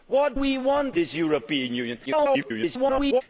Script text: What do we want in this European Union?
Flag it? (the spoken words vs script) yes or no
yes